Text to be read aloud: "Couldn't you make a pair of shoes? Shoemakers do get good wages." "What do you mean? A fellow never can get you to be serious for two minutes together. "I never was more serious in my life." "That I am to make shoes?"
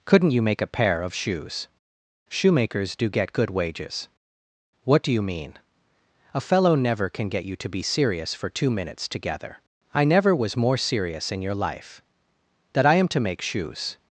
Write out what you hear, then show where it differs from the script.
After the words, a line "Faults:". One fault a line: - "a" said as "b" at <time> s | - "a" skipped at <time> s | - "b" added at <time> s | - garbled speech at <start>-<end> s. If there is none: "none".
"Couldn't you make a pair of shoes? Shoemakers do get good wages." "What do you mean? A fellow never can get you to be serious for two minutes together. "I never was more serious in your life." "That I am to make shoes?"
Faults:
- "my" said as "your" at 11.4 s